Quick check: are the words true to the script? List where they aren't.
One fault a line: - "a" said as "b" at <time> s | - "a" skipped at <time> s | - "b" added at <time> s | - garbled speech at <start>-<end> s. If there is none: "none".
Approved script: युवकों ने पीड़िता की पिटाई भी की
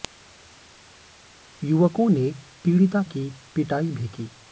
none